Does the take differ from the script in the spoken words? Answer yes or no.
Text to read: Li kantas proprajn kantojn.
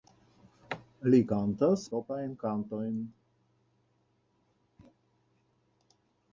no